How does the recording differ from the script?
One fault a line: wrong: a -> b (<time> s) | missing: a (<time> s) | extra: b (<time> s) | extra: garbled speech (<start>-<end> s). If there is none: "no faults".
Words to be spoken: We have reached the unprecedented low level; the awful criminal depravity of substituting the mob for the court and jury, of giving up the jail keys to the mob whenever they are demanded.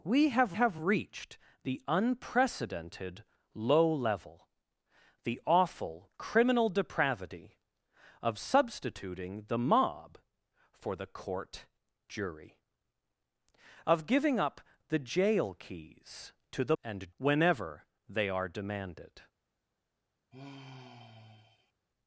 extra: have (0.5 s)
missing: and (11.7 s)
wrong: mob -> and (16.8 s)